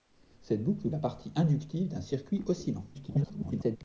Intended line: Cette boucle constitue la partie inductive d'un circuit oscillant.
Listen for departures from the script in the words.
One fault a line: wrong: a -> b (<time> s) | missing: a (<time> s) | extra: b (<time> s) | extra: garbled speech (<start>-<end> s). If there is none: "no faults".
missing: constitue (0.9 s)
extra: garbled speech (2.9-3.8 s)